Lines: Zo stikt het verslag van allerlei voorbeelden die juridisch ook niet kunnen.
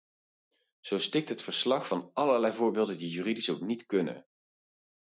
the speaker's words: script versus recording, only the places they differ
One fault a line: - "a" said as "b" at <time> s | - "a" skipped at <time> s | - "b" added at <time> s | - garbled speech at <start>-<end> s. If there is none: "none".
none